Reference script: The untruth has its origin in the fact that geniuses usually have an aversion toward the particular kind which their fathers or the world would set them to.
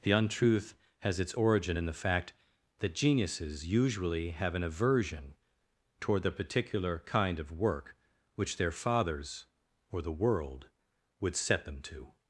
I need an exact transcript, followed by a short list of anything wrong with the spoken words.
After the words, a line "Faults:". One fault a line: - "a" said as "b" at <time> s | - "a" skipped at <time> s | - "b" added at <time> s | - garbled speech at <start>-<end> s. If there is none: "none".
The untruth has its origin in the fact that geniuses usually have an aversion toward the particular kind of work which their fathers or the world would set them to.
Faults:
- "of work" added at 7.4 s